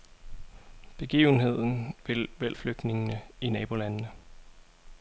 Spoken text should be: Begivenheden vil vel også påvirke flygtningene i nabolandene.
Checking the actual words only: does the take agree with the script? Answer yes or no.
no